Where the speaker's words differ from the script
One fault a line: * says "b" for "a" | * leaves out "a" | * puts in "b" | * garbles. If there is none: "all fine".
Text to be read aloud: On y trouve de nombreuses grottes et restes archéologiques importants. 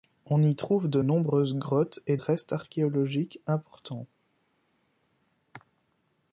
all fine